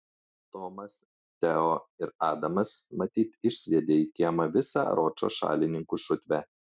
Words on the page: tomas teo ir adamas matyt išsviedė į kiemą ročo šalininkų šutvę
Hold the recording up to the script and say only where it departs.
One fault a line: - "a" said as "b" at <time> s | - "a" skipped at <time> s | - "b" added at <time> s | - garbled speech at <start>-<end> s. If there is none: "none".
- "visą" added at 4.6 s